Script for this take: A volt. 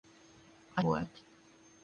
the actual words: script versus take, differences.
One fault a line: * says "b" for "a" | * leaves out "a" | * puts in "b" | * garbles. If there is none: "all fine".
all fine